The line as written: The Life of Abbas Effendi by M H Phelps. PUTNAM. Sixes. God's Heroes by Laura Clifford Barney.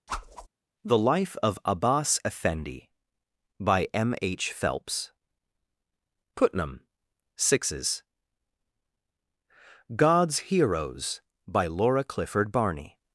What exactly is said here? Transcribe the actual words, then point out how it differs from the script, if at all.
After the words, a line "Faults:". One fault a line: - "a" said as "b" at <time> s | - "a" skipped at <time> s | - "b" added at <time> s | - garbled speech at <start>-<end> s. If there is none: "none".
The Life of Abbas Effendi by M H Phelps. PUTNAM. Sixes. God's Heroes by Laura Clifford Barney.
Faults:
none